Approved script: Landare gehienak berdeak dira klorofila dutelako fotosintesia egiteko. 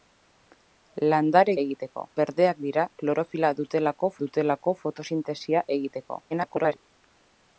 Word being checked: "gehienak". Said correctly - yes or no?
no